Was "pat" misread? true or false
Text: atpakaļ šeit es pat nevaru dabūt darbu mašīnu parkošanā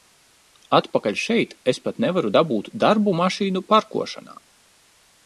false